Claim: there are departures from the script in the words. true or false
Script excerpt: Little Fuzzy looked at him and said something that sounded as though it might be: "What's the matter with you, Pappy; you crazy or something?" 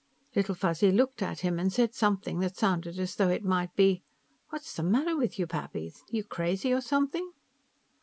false